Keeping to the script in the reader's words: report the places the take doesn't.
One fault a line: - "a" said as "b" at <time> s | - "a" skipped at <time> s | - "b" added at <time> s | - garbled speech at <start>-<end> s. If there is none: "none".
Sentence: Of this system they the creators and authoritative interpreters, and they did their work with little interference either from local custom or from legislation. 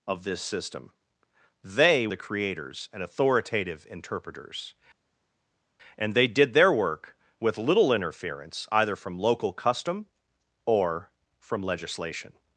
none